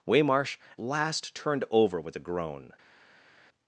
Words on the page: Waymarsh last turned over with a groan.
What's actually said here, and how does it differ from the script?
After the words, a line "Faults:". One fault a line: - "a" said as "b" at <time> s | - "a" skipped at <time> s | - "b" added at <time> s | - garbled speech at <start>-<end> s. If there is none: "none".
Waymarsh last turned over with a groan.
Faults:
none